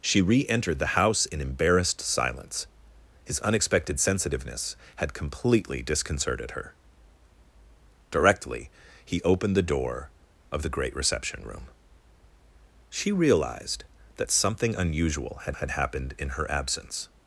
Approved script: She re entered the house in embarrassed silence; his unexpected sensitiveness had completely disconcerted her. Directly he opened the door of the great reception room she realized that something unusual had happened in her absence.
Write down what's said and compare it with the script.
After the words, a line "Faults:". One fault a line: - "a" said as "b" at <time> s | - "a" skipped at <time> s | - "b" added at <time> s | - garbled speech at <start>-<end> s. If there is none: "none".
She re entered the house in embarrassed silence; his unexpected sensitiveness had completely disconcerted her. Directly he opened the door of the great reception room she realized that something unusual had had happened in her absence.
Faults:
- "had" added at 15.6 s